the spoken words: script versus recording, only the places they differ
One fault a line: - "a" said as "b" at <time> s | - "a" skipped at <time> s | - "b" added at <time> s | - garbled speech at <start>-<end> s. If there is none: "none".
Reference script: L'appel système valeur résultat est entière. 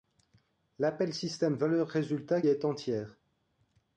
none